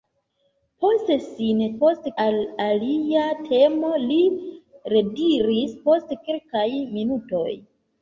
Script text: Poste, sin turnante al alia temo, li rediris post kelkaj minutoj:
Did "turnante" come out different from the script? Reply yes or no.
yes